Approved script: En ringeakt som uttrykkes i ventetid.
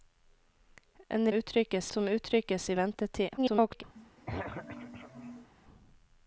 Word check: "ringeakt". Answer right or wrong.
wrong